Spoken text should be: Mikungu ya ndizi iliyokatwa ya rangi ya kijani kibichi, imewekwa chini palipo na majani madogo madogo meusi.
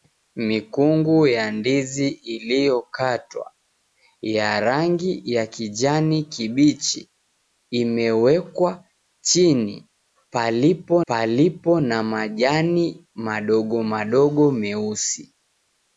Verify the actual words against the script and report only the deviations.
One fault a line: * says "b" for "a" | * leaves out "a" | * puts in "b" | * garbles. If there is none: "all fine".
* puts in "palipo"